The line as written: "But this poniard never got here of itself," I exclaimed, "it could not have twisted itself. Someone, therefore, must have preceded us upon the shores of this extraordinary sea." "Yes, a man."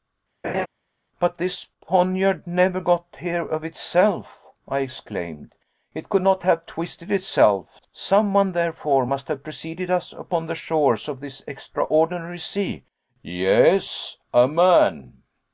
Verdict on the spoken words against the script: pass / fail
pass